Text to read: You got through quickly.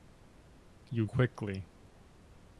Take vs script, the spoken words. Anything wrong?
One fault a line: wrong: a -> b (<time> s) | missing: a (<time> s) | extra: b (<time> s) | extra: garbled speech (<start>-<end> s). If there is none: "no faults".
missing: got through (1.1 s)